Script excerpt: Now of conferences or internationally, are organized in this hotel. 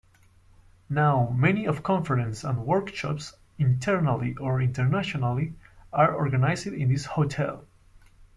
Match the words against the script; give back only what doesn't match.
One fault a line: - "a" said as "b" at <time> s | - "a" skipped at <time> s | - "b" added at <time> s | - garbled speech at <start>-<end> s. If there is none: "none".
- "many" added at 1.3 s
- "and workshops internally" added at 2.4 s